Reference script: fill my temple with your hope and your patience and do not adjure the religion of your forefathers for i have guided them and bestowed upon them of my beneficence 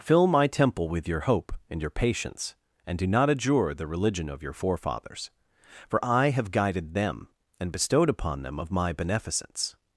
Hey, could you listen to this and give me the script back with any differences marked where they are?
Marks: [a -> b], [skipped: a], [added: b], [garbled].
fill my temple with your hope and your patience and do not adjure the religion of your forefathers for i have guided them and bestowed upon them of my beneficence